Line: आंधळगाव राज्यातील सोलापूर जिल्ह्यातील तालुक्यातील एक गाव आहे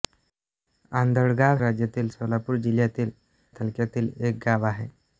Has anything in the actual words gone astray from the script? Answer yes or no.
no